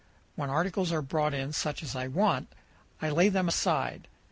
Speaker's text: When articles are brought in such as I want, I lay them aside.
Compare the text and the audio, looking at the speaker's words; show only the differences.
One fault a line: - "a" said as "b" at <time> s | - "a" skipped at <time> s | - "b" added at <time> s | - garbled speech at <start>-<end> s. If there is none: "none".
none